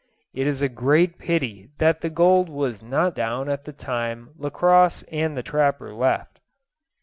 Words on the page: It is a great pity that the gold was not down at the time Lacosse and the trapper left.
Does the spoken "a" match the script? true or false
true